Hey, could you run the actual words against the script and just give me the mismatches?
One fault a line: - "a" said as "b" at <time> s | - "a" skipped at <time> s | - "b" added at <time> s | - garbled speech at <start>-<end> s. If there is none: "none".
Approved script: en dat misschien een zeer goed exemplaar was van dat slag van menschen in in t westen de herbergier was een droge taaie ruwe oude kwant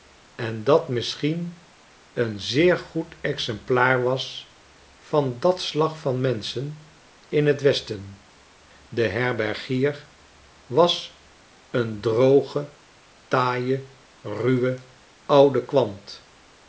- "in" skipped at 7.6 s